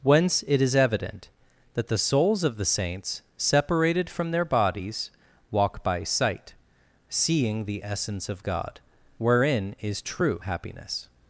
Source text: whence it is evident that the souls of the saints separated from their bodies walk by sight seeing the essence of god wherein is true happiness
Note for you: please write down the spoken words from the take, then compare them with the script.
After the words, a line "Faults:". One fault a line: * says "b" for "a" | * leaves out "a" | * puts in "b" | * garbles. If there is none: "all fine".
whence it is evident that the souls of the saints separated from their bodies walk by sight seeing the essence of god wherein is true happiness
Faults:
all fine